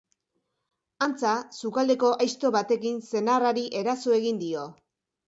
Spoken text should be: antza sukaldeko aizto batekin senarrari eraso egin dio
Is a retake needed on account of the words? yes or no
no